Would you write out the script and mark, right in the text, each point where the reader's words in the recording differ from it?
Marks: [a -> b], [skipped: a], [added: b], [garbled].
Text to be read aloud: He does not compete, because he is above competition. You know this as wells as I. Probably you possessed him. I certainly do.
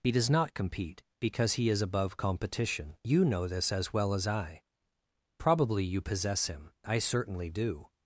He does not compete, because he is above competition. You know this as [wells -> well] as I. Probably you [possessed -> possess] him. I certainly do.